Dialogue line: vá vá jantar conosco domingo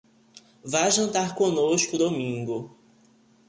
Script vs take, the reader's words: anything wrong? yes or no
yes